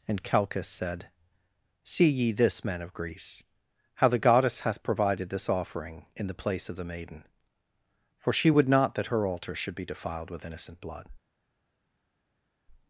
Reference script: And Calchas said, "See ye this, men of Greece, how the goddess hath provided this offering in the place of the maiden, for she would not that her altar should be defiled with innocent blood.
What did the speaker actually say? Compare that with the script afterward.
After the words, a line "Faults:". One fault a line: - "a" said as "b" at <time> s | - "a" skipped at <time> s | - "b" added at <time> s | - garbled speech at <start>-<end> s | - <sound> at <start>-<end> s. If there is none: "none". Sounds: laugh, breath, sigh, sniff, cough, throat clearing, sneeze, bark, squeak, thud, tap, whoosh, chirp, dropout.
And Calchas said, "See ye this, men of Greece, how the goddess hath provided this offering in the place of the maiden, for she would not that her altar should be defiled with innocent blood.
Faults:
none